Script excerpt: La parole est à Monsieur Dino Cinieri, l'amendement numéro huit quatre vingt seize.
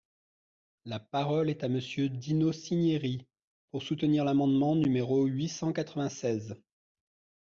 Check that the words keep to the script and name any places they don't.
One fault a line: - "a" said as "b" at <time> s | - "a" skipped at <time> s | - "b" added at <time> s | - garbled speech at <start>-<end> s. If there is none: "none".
- "pour soutenir" added at 3.7 s
- "cent" added at 5.5 s